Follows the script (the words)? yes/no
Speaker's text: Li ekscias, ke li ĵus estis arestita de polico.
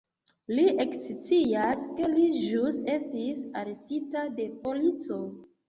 yes